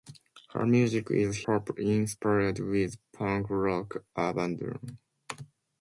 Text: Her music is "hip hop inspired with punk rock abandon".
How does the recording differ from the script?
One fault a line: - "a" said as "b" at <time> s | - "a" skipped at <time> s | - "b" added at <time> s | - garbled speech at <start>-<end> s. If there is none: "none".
- "hip" skipped at 1.4 s